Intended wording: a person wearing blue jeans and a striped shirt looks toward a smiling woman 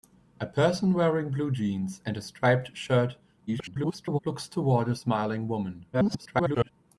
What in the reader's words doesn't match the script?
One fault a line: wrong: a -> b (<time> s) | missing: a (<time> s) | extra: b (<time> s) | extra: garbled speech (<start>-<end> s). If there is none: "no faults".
extra: garbled speech (3.5-4.2 s)
extra: garbled speech (5.9-6.7 s)